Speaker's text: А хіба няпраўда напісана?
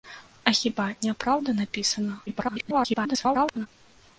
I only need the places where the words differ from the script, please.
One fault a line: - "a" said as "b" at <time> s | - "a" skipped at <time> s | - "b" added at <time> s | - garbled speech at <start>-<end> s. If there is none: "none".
- garbled speech at 2.3-3.7 s